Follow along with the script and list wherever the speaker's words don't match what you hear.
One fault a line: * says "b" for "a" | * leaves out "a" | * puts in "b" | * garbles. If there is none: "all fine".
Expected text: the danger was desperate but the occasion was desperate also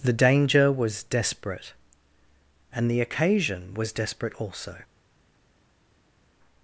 * says "and" for "but"